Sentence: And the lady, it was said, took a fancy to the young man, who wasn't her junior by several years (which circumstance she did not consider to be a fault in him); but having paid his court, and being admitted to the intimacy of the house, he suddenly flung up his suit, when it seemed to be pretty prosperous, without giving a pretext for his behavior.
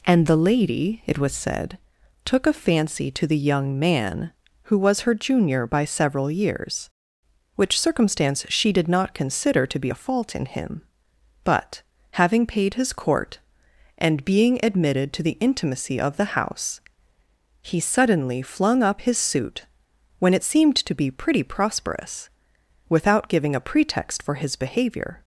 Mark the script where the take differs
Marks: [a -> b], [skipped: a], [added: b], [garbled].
And the lady, it was said, took a fancy to the young man, who [wasn't -> was] her junior by several years (which circumstance she did not consider to be a fault in him); but having paid his court, and being admitted to the intimacy of the house, he suddenly flung up his suit, when it seemed to be pretty prosperous, without giving a pretext for his behavior.